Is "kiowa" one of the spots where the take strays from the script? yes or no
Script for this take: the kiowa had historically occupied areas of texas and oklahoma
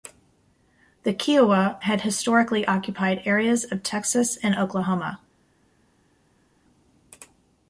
no